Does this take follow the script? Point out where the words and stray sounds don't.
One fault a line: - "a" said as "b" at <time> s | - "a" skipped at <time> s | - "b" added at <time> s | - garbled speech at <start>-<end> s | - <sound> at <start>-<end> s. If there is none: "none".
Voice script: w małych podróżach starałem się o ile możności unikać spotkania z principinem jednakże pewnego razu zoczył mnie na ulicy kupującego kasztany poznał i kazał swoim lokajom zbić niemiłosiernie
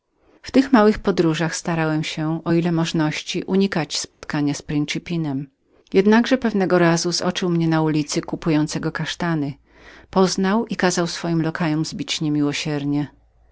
- "tych" added at 0.5 s
- dropout at 4.1-4.2 s